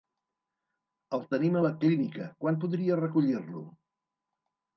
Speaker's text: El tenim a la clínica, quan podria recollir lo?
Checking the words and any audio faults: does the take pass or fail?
pass